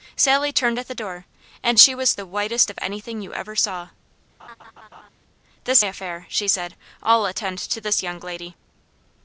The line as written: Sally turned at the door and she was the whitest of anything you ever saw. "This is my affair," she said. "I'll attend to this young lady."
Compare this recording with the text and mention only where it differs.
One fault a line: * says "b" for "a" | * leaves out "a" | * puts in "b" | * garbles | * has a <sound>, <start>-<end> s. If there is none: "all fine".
* has a laugh, 4.4-5.1 s
* leaves out "is my"